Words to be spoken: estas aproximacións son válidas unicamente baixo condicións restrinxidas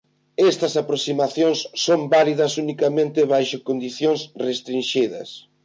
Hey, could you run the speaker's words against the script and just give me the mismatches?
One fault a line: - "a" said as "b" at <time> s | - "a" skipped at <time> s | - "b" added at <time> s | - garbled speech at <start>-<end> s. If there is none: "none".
none